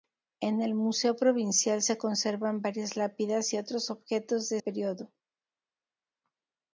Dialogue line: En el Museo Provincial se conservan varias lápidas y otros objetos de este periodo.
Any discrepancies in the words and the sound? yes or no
yes